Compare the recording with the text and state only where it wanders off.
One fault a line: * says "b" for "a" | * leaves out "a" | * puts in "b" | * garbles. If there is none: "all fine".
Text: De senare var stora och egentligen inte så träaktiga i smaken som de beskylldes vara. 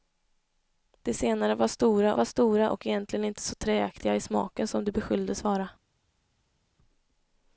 * puts in "var stora"